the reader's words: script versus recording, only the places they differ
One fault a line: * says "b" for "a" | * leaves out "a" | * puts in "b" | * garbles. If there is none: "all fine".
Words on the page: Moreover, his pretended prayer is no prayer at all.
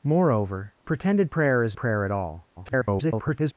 * leaves out "his"
* leaves out "no"
* garbles